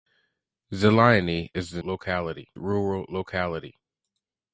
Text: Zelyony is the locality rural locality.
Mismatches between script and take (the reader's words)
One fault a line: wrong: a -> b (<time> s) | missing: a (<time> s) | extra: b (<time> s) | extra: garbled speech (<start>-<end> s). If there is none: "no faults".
no faults